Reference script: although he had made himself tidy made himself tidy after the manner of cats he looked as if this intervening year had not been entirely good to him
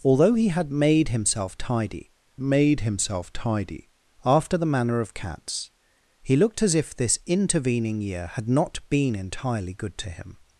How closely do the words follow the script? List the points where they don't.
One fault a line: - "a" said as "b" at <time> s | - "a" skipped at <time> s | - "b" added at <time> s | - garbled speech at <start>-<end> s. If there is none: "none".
none